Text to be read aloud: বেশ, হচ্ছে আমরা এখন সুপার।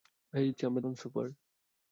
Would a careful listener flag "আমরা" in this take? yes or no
no